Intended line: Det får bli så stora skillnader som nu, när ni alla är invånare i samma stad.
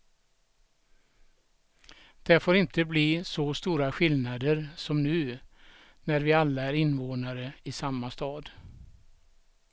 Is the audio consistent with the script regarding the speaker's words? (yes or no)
no